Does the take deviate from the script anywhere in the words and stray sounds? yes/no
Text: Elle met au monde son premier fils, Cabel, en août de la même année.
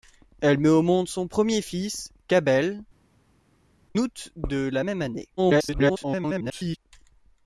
yes